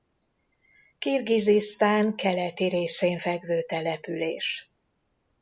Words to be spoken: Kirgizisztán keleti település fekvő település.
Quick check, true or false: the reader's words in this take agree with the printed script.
false